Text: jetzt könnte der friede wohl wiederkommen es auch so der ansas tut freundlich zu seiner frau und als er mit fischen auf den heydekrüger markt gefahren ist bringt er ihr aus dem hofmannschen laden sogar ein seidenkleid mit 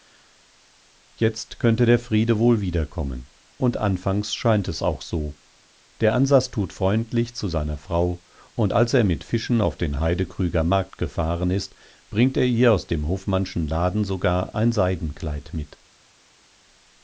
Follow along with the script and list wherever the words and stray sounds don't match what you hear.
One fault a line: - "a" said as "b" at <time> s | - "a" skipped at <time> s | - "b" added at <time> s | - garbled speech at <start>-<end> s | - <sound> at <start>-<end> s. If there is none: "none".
- "und anfangs scheint" added at 3.6 s